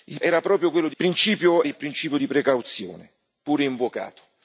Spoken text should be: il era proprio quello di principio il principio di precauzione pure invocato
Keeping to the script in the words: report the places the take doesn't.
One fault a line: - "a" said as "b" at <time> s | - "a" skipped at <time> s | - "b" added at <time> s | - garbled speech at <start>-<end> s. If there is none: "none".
none